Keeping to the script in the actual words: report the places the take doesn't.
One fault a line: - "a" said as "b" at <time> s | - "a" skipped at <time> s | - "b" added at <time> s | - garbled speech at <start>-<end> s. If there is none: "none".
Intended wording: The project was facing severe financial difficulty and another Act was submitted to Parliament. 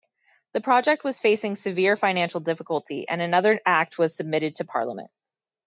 none